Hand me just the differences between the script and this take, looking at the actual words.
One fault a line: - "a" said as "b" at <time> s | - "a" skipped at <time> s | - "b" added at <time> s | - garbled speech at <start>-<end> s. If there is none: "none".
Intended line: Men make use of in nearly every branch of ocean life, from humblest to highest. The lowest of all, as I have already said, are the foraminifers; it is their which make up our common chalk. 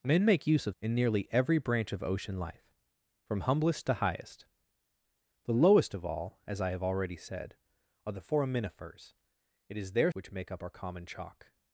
none